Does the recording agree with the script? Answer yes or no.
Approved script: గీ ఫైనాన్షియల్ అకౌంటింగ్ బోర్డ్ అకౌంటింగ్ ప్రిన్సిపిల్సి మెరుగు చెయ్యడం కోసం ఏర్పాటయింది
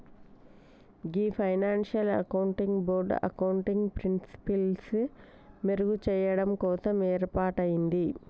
yes